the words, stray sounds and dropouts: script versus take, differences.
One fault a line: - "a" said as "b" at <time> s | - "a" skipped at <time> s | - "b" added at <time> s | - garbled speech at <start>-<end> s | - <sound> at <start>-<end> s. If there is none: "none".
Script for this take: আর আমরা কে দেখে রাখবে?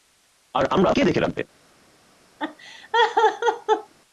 - laugh at 2.4-3.9 s